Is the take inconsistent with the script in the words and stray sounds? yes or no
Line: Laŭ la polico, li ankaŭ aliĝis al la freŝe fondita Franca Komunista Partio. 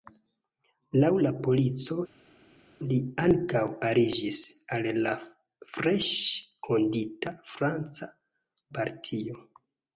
yes